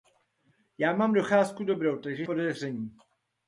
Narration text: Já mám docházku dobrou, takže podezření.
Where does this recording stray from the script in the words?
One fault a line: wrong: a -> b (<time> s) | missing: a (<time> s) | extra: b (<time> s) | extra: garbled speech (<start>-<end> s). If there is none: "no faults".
no faults